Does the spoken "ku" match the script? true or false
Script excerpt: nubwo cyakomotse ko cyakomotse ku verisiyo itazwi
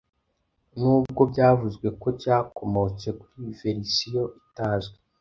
false